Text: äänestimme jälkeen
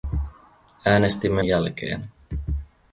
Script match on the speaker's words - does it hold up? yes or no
yes